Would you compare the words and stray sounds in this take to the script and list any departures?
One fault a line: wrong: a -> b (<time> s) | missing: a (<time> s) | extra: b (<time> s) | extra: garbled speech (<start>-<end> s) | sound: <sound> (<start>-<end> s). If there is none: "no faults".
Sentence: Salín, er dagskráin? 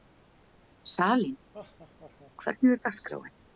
sound: laugh (1.5-2.3 s)
extra: hvernig (2.4 s)